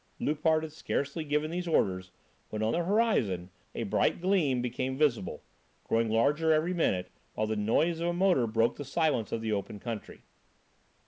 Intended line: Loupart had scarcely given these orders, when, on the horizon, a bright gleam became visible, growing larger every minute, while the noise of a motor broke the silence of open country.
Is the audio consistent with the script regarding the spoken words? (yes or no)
no